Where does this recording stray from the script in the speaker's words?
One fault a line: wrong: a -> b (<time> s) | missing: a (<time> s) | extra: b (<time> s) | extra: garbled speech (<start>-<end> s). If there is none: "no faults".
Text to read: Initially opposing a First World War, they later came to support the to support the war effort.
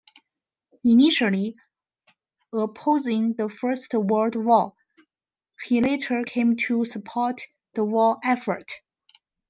wrong: a -> the (3.3 s)
wrong: they -> he (5.6 s)
missing: to support the (7.8 s)